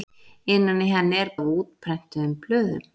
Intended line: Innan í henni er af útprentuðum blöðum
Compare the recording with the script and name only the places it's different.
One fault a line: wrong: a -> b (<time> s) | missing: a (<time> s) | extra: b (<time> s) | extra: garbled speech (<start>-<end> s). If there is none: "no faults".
no faults